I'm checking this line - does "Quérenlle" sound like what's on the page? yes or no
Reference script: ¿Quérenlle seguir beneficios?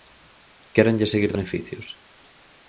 yes